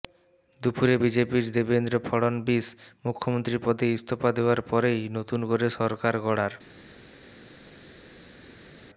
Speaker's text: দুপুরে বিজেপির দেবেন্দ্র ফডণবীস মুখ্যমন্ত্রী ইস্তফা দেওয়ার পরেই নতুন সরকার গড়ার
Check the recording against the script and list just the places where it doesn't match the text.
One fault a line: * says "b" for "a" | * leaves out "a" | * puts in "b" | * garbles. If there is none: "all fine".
* puts in "পদে"
* puts in "করে"